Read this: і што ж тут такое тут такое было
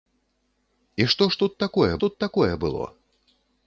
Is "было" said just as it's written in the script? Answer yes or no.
yes